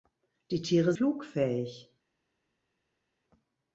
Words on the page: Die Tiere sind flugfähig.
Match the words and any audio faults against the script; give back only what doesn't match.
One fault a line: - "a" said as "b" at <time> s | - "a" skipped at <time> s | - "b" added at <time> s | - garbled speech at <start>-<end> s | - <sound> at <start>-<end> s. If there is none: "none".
- "sind" skipped at 0.9 s